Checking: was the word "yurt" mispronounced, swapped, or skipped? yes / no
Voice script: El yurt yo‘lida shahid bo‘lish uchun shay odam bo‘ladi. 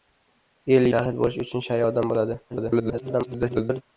yes